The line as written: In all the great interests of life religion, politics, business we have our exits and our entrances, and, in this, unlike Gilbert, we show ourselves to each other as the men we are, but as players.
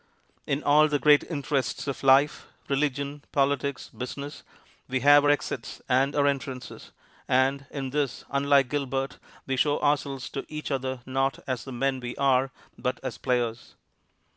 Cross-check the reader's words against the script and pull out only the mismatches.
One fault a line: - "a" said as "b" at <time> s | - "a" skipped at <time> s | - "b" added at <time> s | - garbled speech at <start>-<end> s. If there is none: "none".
- "not" added at 11.0 s